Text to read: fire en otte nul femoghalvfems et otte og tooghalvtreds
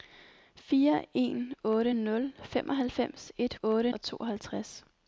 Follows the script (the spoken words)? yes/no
yes